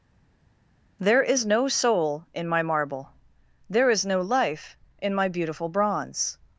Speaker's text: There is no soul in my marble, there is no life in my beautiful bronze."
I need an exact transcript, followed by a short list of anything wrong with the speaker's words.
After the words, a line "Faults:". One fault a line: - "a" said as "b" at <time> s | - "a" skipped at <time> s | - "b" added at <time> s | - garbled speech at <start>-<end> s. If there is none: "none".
There is no soul in my marble, there is no life in my beautiful bronze."
Faults:
none